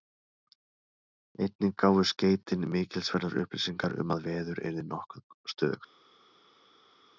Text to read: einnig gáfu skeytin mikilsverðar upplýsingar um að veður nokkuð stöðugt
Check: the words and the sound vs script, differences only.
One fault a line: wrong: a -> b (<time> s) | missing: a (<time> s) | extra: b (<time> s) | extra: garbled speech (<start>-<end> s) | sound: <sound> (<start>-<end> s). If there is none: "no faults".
extra: yrði (4.7 s)